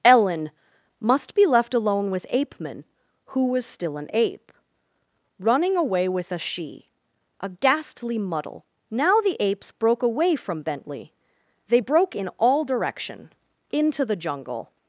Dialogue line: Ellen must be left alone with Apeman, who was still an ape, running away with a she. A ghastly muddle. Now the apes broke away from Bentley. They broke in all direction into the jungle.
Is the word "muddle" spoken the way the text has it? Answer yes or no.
yes